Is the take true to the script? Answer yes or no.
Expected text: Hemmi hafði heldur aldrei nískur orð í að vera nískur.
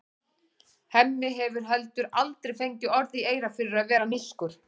no